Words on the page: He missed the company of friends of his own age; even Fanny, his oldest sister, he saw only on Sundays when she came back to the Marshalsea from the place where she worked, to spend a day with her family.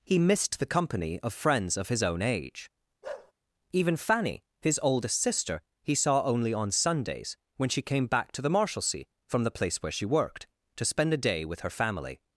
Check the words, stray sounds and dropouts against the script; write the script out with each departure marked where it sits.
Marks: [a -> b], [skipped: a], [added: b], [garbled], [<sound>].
He missed the company of friends of his own age; [bark] even Fanny, his oldest sister, he saw only on Sundays when she came back to the Marshalsea from the place where she worked, to spend a day with her family.